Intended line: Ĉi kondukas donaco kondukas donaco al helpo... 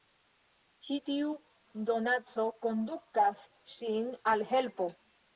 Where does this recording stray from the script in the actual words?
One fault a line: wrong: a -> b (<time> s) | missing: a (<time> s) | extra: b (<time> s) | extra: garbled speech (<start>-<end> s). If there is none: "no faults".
wrong: kondukas -> tiu (1.1 s)
wrong: donaco -> ŝin (3.7 s)